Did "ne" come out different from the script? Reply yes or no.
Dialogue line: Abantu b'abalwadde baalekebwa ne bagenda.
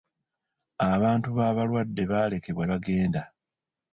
yes